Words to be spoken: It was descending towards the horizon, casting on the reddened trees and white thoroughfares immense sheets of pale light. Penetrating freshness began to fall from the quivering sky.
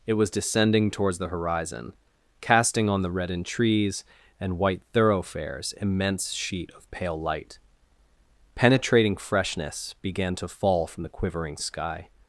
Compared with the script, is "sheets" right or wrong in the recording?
wrong